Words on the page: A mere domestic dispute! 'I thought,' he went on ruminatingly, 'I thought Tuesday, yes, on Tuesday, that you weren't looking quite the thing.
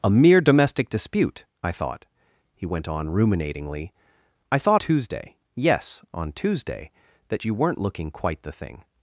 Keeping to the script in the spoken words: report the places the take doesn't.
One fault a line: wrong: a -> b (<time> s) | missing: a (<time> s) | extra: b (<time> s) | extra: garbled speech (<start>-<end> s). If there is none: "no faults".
no faults